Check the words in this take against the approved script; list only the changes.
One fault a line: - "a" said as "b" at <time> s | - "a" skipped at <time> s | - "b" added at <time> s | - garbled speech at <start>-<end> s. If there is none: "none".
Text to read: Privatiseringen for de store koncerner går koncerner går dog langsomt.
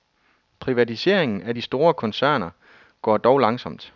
- "for" said as "af" at 1.4 s
- "koncerner går" skipped at 3.2 s